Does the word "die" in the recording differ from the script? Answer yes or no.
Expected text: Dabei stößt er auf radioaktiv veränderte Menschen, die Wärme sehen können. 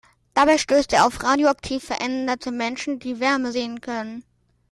no